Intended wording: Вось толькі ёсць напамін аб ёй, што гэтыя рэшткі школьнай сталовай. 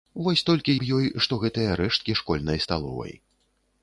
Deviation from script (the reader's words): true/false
true